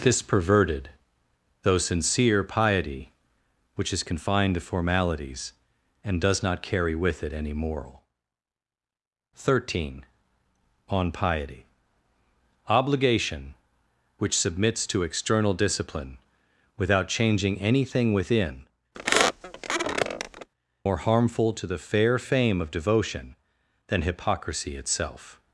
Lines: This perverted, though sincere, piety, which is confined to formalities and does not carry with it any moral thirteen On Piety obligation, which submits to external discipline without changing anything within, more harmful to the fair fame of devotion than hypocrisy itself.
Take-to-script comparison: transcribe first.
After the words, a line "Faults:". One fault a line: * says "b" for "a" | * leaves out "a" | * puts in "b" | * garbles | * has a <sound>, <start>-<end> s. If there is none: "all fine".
This perverted, though sincere, piety, which is confined to formalities and does not carry with it any moral thirteen On Piety obligation, which submits to external discipline without changing anything within, more harmful to the fair fame of devotion than hypocrisy itself.
Faults:
* has a squeak, 18.9-20.5 s